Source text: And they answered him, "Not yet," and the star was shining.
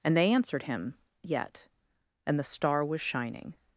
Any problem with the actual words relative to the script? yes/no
yes